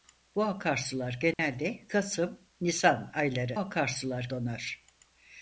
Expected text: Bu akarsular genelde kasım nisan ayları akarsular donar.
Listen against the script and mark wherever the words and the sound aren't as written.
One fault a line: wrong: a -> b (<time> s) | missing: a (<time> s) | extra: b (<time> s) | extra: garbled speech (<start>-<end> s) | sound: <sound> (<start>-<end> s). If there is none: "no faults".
sound: dropout (1.3-1.4 s)